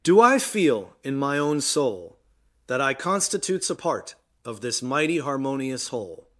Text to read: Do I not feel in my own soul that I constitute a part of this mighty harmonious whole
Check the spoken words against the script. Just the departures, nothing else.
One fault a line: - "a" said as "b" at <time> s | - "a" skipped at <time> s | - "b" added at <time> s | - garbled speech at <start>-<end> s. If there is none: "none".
- "not" skipped at 0.4 s
- "constitute" said as "constitutes" at 3.0 s